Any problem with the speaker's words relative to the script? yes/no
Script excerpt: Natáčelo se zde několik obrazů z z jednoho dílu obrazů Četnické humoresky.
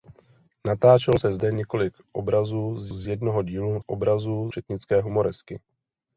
no